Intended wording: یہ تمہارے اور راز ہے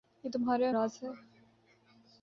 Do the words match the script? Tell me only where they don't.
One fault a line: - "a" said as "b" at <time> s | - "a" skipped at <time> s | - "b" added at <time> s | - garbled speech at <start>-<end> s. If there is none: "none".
none